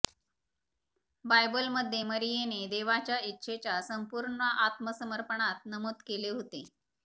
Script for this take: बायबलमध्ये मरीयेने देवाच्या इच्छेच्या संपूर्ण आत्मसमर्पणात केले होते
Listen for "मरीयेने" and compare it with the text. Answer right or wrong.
right